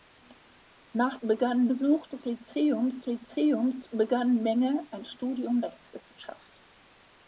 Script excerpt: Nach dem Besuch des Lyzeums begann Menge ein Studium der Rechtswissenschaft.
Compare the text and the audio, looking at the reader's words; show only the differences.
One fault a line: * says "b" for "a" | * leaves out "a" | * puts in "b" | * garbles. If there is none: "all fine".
* says "begann" for "dem"
* puts in "Lyzeums"
* leaves out "der"